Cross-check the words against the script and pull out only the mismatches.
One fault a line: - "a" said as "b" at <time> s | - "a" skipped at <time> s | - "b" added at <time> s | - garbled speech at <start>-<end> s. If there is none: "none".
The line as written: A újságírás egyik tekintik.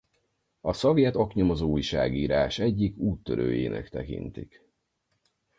- "szovjet oknyomozó" added at 0.7 s
- "úttörőjének" added at 3.0 s